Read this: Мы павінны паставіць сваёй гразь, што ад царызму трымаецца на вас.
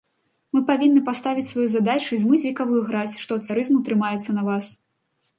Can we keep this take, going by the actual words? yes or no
no